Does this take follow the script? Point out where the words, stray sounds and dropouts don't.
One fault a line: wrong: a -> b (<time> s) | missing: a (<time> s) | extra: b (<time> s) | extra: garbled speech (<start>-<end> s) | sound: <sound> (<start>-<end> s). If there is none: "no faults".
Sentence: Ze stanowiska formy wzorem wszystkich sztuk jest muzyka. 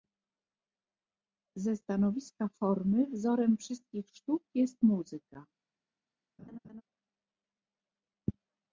sound: laugh (6.4-6.8 s)